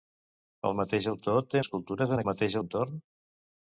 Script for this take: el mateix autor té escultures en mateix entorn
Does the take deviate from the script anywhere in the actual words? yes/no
no